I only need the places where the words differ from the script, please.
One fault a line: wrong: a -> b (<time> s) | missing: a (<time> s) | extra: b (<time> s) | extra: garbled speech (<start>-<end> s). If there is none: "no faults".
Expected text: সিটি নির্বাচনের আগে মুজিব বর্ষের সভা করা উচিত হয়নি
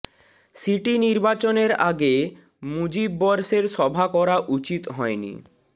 no faults